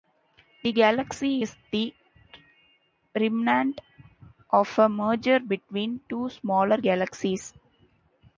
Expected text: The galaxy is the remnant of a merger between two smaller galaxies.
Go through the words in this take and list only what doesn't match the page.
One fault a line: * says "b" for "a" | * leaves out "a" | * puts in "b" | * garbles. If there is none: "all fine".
all fine